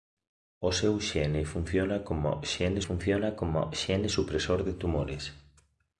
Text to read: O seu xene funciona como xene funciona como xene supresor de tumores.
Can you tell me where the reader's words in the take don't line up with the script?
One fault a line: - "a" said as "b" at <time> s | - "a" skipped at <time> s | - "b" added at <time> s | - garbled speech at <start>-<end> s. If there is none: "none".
none